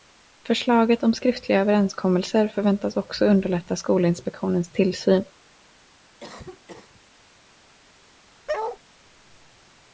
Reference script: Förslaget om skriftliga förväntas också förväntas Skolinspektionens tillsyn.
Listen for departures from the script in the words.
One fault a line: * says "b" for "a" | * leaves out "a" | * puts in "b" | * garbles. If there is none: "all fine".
* puts in "överenskommelser"
* says "underlätta" for "förväntas"